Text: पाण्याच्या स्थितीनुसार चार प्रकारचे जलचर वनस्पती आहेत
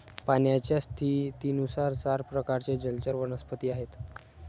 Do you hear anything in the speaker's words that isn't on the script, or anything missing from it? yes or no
no